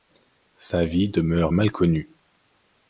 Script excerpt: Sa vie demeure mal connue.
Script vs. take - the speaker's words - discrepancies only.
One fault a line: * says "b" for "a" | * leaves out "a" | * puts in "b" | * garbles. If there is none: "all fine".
all fine